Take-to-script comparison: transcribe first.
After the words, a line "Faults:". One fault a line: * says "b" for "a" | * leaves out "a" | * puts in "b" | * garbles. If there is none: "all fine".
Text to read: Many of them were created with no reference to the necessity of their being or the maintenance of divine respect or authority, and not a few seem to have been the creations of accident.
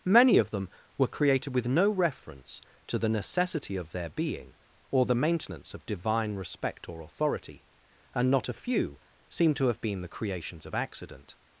Many of them were created with no reference to the necessity of their being or the maintenance of divine respect or authority, and not a few seem to have been the creations of accident.
Faults:
all fine